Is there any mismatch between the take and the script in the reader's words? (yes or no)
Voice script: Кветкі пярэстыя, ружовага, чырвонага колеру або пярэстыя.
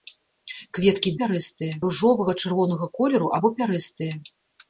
no